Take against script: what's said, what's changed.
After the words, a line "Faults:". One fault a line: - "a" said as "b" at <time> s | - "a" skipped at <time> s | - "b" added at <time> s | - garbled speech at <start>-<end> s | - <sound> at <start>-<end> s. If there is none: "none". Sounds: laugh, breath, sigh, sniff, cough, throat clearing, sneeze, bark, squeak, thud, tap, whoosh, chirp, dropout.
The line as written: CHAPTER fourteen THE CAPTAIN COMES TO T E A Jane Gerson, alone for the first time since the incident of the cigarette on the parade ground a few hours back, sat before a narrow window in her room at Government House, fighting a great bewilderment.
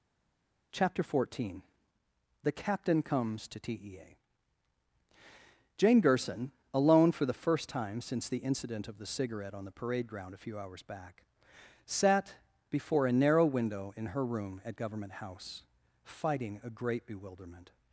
CHAPTER fourteen THE CAPTAIN COMES TO T E A Jane Gerson, alone for the first time since the incident of the cigarette on the parade ground a few hours back, sat before a narrow window in her room at Government House, fighting a great bewilderment.
Faults:
none